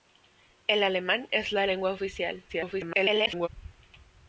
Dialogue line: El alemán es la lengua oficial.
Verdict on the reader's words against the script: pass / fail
fail